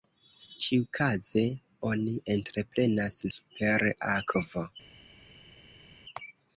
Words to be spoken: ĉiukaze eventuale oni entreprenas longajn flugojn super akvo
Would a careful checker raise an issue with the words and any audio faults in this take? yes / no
yes